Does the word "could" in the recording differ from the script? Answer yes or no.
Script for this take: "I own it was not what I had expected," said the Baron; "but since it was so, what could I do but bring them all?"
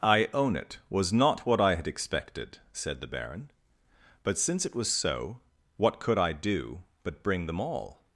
no